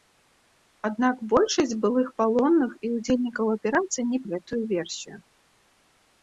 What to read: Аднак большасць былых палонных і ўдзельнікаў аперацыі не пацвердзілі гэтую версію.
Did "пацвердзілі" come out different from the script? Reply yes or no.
yes